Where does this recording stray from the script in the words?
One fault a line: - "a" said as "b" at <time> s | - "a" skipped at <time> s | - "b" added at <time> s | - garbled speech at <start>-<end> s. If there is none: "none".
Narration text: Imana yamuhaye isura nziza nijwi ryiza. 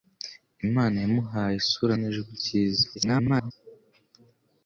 - "nziza" skipped at 1.9 s
- garbled speech at 2.9-3.5 s